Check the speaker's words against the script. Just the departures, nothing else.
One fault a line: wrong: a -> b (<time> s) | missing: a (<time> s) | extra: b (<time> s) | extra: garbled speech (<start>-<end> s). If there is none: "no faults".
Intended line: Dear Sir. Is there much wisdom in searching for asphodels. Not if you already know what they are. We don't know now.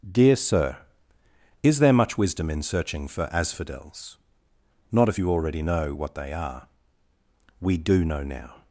wrong: don't -> do (7.8 s)